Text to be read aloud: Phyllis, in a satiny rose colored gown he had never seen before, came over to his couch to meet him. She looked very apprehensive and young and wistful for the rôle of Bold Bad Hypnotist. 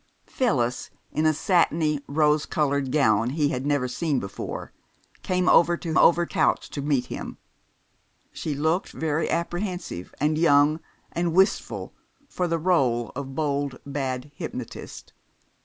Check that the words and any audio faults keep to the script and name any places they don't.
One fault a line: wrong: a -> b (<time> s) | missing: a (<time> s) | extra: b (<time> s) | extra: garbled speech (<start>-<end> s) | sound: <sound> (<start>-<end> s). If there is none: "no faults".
wrong: his -> over (6.0 s)